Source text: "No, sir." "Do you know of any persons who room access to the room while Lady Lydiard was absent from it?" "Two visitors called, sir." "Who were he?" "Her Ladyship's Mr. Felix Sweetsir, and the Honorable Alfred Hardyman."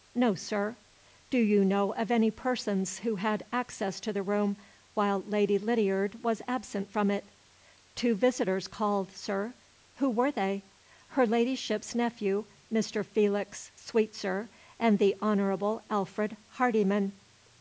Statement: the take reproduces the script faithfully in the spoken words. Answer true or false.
false